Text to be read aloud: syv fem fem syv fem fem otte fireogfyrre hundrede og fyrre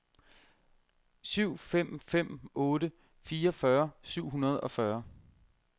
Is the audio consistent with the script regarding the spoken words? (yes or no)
no